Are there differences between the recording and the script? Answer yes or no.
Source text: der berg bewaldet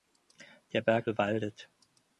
no